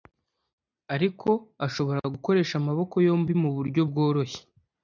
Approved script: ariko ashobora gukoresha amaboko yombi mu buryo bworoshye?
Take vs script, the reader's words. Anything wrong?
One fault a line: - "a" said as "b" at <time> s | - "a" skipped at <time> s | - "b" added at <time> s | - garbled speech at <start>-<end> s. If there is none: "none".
none